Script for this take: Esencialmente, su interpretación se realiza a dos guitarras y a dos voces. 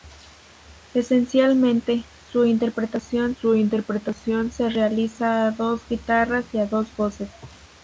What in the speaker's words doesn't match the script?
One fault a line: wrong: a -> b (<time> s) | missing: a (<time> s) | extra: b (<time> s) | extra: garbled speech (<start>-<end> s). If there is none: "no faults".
extra: su interpretación (3.4 s)